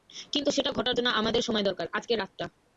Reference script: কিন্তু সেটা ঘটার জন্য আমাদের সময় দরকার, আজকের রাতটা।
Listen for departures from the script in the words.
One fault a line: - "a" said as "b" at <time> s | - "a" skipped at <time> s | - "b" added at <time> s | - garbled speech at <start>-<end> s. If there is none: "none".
none